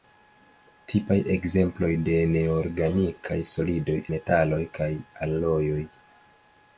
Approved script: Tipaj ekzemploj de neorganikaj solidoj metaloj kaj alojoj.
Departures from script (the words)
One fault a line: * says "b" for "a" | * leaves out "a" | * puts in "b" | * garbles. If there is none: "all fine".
all fine